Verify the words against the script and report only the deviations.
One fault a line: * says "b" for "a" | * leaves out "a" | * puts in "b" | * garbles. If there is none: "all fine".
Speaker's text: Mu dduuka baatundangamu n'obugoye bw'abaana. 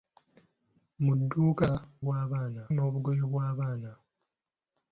* says "bw'abaana" for "baatundangamu"